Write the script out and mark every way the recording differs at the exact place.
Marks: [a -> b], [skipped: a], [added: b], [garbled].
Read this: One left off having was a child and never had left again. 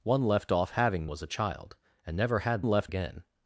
One left off having was a child and never had left again.